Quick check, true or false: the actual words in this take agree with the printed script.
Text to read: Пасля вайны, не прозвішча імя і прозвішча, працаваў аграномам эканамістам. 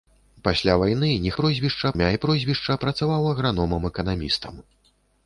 true